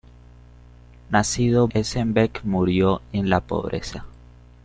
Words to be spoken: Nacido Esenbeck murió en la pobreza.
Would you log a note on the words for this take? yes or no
no